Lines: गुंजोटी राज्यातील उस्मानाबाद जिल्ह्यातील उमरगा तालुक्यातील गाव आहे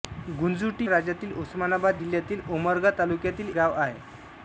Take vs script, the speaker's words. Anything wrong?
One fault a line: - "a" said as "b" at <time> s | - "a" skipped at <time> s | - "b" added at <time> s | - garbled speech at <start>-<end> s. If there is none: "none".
none